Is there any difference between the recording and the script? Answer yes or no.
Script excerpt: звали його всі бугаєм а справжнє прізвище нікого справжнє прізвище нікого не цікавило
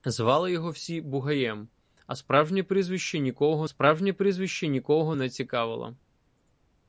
no